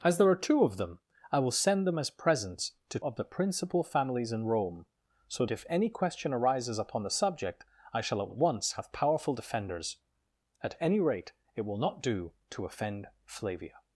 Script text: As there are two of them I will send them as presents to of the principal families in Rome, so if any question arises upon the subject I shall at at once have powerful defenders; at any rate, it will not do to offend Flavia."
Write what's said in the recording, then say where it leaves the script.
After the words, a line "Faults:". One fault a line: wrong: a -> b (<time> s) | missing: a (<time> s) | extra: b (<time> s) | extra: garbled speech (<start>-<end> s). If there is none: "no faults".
As there are two of them I will send them as presents to of the principal families in Rome, so if any question arises upon the subject I shall at at once have powerful defenders; at any rate, it will not do to offend Flavia."
Faults:
no faults